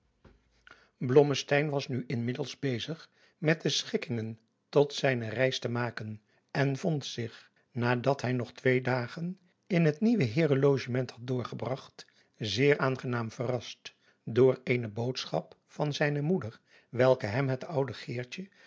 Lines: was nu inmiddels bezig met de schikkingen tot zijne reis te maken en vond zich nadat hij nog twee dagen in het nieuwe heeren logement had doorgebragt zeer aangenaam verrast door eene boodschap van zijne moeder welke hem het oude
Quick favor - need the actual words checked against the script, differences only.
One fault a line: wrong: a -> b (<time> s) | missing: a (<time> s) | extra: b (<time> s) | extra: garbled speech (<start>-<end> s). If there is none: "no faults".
no faults